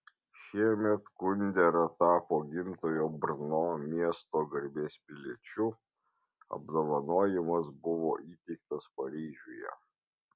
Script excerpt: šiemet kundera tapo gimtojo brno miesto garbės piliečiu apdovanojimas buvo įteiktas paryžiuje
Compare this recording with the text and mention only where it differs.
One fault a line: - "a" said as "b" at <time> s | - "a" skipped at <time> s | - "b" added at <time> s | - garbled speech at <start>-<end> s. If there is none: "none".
none